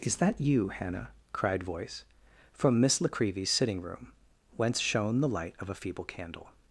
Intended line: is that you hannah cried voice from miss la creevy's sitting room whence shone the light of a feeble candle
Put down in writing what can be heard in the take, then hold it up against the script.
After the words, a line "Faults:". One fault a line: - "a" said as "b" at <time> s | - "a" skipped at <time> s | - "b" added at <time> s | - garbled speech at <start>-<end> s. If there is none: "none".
is that you hannah cried voice from miss la creevy's sitting room whence shone the light of a feeble candle
Faults:
none